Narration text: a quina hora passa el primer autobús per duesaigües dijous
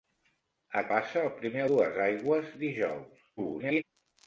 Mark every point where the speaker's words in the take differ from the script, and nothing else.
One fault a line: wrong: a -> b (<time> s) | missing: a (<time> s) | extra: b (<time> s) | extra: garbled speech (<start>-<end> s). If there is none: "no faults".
missing: quina hora (0.8 s)
missing: autobús per (1.6 s)
extra: garbled speech (3.4-3.8 s)